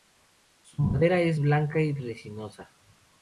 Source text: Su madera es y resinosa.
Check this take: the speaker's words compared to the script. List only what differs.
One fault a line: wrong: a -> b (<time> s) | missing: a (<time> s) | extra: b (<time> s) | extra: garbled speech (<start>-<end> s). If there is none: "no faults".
extra: blanca (1.4 s)